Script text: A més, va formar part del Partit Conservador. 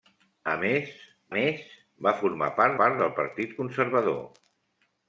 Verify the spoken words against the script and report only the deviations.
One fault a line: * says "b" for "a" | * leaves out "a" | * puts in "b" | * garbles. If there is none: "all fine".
* puts in "més"
* puts in "part"